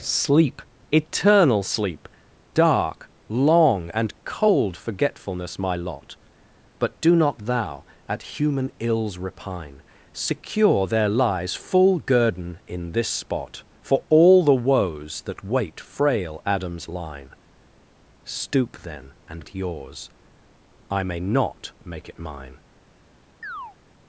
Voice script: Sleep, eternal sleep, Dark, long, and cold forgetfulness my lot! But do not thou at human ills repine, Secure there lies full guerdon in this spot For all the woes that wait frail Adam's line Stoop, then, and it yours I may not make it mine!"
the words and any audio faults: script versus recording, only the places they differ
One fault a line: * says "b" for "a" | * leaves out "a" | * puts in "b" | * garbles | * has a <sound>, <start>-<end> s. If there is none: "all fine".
* has a chirp, 23.4-23.8 s